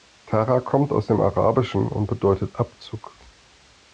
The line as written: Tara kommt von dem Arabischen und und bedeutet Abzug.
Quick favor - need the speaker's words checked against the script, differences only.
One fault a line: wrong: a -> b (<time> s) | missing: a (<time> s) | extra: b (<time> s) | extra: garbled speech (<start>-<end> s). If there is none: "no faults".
wrong: von -> aus (0.9 s)
missing: und (2.1 s)